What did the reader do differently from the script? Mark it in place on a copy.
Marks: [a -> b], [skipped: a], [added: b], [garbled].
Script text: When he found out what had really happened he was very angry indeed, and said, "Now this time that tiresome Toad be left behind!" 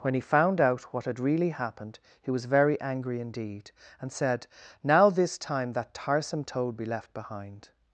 When he found out what had really happened he was very angry indeed, and said, "Now this time that tiresome Toad be left behind!"